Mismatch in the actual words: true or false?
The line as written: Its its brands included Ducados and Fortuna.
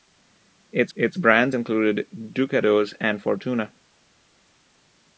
false